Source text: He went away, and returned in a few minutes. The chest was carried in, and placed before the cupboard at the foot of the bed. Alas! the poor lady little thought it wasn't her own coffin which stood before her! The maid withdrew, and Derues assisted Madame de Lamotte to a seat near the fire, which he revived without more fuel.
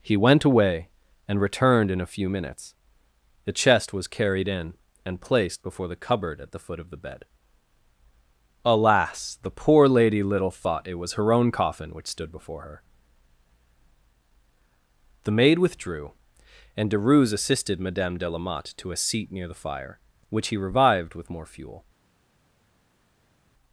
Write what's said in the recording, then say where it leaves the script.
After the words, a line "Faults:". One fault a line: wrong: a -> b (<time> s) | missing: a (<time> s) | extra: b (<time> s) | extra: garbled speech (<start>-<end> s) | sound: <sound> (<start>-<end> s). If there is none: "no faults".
He went away, and returned in a few minutes. The chest was carried in, and placed before the cupboard at the foot of the bed. Alas! the poor lady little thought it was her own coffin which stood before her! The maid withdrew, and Derues assisted Madame de Lamotte to a seat near the fire, which he revived with more fuel.
Faults:
wrong: wasn't -> was (11.0 s)
wrong: without -> with (21.1 s)